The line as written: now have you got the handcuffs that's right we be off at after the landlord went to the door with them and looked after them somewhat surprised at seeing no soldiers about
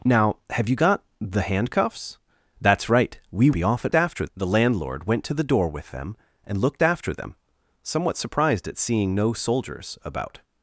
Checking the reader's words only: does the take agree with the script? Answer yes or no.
yes